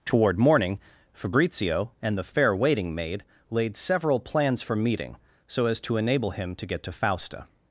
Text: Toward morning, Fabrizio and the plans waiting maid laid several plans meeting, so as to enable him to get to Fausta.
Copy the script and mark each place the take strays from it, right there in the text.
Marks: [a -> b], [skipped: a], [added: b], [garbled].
Toward morning, Fabrizio and the [plans -> fair] waiting maid laid several plans [added: for] meeting, so as to enable him to get to Fausta.